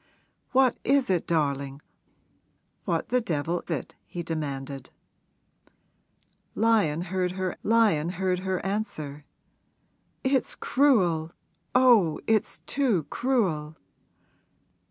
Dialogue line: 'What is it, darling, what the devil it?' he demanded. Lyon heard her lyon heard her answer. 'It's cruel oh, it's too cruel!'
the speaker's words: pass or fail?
pass